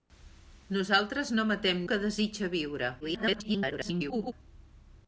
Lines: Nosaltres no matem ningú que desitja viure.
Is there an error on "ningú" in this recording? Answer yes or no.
yes